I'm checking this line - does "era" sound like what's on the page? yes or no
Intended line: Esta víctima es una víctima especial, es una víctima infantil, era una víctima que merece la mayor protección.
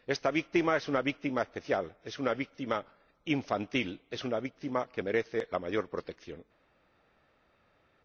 no